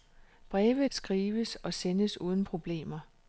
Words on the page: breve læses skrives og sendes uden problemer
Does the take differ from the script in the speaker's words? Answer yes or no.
yes